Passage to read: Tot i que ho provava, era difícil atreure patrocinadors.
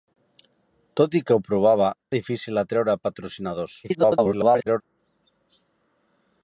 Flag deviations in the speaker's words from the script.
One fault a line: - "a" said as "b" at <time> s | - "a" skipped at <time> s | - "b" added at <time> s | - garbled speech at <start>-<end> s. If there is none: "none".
- "era" skipped at 1.9 s
- garbled speech at 3.8-4.8 s